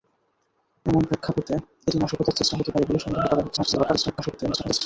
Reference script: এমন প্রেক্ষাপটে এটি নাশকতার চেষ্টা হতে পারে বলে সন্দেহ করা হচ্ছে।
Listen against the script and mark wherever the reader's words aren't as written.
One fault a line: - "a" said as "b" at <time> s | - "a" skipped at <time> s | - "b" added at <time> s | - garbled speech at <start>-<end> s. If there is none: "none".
- garbled speech at 3.6-4.8 s